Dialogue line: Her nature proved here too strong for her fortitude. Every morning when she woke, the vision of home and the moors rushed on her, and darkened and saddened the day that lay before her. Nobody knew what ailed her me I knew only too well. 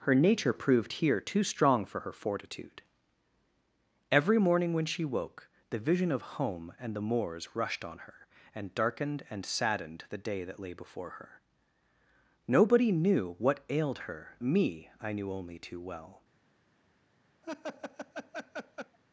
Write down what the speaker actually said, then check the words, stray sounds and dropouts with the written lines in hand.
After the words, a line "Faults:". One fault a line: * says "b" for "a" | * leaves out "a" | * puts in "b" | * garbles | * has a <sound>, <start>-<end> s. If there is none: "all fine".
Her nature proved here too strong for her fortitude. Every morning when she woke, the vision of home and the moors rushed on her, and darkened and saddened the day that lay before her. Nobody knew what ailed her me I knew only too well.
Faults:
* has a laugh, 17.4-19.0 s